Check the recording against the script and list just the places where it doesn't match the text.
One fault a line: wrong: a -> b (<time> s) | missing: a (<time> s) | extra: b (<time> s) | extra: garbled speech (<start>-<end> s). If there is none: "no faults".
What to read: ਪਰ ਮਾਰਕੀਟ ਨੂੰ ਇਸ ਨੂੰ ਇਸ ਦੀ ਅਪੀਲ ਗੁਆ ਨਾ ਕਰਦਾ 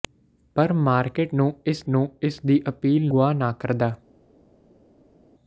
no faults